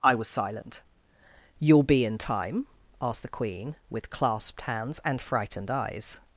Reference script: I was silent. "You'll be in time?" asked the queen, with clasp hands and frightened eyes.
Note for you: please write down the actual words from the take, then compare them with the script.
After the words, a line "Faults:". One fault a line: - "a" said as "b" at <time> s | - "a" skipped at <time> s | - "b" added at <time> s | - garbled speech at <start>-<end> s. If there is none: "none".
I was silent. "You'll be in time?" asked the queen, with clasped hands and frightened eyes.
Faults:
- "clasp" said as "clasped" at 4.1 s